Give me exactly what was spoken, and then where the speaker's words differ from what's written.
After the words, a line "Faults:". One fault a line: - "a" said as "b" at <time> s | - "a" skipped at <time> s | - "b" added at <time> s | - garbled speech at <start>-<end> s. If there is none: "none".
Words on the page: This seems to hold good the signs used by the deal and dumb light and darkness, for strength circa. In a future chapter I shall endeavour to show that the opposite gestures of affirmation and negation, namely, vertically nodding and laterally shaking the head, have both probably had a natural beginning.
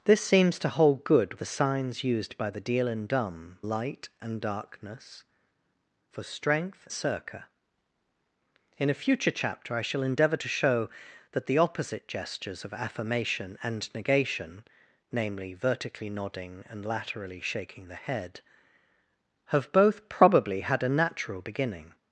This seems to hold good the signs used by the deal and dumb light and darkness, for strength circa. In a future chapter I shall endeavour to show that the opposite gestures of affirmation and negation, namely, vertically nodding and laterally shaking the head, have both probably had a natural beginning.
Faults:
none